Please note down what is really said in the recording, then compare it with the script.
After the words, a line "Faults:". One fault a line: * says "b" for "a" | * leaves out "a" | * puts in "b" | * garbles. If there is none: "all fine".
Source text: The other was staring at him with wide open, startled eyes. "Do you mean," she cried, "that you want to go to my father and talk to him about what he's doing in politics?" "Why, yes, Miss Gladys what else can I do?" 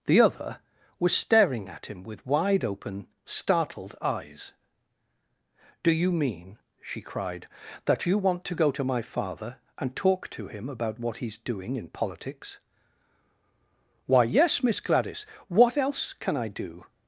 The other was staring at him with wide open, startled eyes. "Do you mean," she cried, "that you want to go to my father and talk to him about what he's doing in politics?" "Why, yes, Miss Gladys what else can I do?"
Faults:
all fine